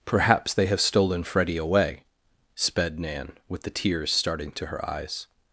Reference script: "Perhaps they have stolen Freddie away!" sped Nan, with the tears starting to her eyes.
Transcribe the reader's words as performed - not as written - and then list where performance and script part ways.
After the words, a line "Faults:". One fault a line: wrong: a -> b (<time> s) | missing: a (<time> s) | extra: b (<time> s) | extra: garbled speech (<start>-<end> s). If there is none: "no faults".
"Perhaps they have stolen Freddie away!" sped Nan, with the tears starting to her eyes.
Faults:
no faults